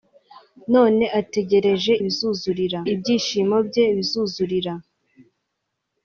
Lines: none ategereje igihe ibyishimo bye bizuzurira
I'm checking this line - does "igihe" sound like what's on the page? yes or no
no